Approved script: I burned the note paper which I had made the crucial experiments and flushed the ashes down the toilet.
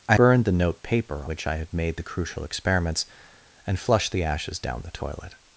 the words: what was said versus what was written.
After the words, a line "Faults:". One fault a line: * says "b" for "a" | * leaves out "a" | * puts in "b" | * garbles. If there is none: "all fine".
I burned the note paper which I had made the crucial experiments and flushed the ashes down the toilet.
Faults:
all fine